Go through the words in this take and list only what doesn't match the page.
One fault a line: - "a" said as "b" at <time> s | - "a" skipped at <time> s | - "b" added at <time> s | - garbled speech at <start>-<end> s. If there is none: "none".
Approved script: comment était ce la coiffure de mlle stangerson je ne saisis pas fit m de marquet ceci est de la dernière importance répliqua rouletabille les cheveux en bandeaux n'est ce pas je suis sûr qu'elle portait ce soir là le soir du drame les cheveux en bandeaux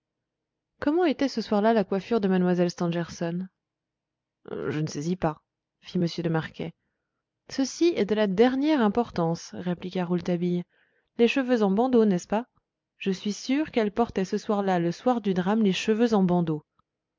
- "soir là" added at 1.4 s